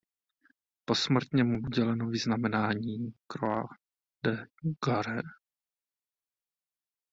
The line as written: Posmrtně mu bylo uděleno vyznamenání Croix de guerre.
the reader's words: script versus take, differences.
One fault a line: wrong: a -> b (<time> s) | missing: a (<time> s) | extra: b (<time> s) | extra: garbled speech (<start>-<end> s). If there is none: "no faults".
missing: bylo (1.6 s)